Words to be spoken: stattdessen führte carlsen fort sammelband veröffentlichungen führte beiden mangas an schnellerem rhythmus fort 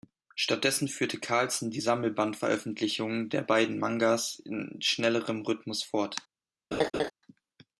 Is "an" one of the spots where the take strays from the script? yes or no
yes